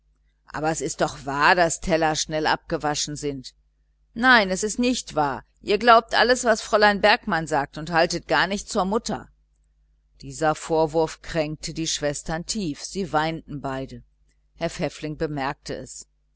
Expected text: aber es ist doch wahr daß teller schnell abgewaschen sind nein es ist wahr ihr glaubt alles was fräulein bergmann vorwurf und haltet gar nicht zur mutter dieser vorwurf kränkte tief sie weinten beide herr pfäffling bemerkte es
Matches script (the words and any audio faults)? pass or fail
fail